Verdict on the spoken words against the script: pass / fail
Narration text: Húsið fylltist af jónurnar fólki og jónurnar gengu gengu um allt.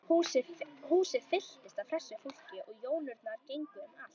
fail